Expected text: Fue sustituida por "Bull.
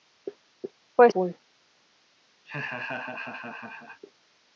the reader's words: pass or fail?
fail